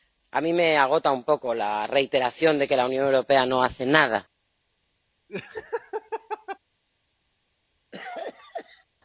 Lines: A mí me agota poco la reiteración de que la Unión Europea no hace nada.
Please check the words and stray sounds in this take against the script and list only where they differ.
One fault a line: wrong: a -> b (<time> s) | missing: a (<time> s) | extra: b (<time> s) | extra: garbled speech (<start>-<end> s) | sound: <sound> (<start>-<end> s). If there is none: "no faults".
extra: un (1.1 s)
sound: laugh (5.3-6.6 s)
sound: cough (7.9-8.9 s)